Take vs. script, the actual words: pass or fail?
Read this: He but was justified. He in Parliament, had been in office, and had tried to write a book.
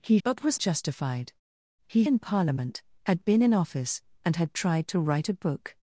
pass